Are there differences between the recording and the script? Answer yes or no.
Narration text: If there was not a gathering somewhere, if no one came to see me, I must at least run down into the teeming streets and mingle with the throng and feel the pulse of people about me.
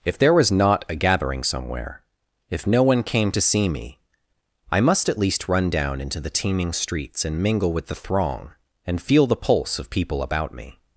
no